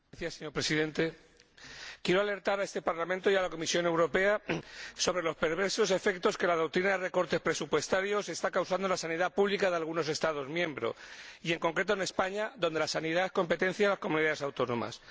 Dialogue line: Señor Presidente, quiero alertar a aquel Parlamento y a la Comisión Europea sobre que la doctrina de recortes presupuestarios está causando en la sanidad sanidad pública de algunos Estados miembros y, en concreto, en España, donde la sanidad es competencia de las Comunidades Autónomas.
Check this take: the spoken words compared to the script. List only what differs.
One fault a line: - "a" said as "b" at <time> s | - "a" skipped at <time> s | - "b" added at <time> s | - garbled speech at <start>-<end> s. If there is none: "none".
- "aquel" said as "este" at 2.6 s
- "los perversos efectos" added at 5.2 s
- "sanidad" skipped at 9.3 s